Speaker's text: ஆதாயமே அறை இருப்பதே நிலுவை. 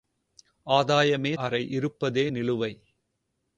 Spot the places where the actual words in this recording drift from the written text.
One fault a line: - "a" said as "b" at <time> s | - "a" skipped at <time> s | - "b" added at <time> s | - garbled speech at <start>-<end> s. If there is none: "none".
none